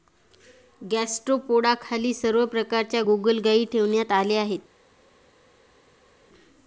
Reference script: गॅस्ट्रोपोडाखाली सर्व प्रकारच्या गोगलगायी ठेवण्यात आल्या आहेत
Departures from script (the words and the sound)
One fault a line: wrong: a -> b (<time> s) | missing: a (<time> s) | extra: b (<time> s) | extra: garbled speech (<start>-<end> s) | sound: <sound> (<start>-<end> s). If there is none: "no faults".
no faults